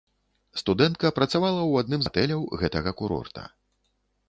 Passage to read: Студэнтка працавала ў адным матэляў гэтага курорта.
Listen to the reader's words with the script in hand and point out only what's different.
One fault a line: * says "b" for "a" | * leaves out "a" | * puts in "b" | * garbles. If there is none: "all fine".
all fine